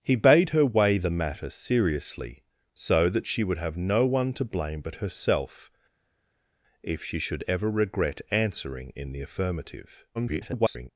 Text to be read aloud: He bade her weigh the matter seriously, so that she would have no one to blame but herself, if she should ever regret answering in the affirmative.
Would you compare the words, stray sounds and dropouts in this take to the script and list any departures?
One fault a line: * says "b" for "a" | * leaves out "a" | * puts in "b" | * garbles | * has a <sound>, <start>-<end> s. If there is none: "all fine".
* garbles